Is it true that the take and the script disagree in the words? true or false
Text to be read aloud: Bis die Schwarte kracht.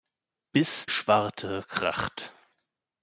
true